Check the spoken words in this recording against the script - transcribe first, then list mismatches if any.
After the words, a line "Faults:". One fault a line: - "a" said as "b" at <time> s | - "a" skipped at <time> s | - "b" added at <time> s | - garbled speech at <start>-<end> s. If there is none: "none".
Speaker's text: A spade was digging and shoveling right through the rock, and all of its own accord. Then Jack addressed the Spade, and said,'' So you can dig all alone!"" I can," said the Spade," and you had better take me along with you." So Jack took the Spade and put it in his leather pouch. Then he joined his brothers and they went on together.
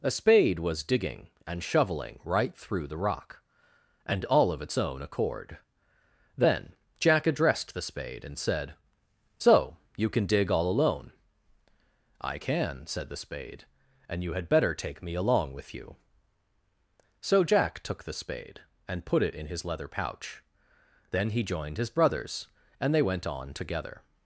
A spade was digging and shoveling right through the rock, and all of its own accord. Then Jack addressed the Spade, and said,'' So you can dig all alone!"" I can," said the Spade," and you had better take me along with you." So Jack took the Spade and put it in his leather pouch. Then he joined his brothers and they went on together.
Faults:
none